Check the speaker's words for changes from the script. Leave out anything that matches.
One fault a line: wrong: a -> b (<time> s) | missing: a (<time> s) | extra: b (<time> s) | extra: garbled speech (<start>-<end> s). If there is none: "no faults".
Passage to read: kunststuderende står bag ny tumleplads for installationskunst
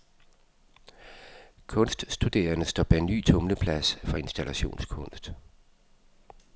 no faults